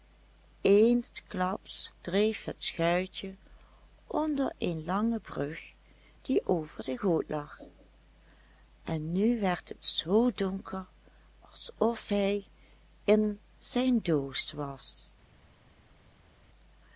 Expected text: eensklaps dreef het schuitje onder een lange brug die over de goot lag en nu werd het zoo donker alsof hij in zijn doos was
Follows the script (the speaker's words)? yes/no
yes